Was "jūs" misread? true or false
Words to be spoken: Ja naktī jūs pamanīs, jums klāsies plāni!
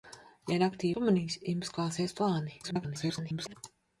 true